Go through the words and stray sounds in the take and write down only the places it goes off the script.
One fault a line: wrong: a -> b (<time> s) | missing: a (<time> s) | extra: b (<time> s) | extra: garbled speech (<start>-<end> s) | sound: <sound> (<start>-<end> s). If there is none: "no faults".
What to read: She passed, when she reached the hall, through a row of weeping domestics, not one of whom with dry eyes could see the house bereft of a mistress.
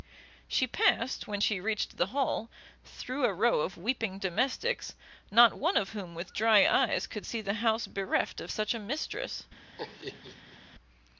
extra: such (8.5 s)
sound: laugh (9.8-10.6 s)